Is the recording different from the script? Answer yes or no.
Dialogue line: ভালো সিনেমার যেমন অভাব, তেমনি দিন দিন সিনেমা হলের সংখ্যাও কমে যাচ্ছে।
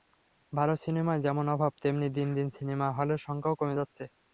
no